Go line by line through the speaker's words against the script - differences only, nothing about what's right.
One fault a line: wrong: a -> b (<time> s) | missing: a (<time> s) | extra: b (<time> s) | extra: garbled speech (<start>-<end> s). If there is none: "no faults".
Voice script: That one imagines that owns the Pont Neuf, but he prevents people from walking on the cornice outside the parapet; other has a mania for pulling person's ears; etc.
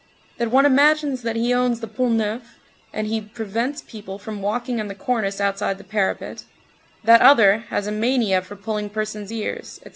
extra: he (1.4 s)
wrong: but -> and (2.9 s)
extra: that (7.0 s)